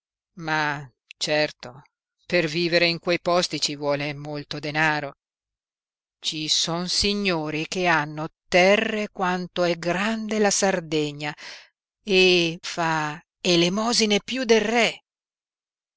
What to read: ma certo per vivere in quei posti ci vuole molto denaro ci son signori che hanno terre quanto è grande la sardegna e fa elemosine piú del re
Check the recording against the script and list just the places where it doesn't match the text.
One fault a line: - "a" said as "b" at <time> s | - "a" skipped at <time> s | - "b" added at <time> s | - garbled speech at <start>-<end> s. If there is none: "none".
none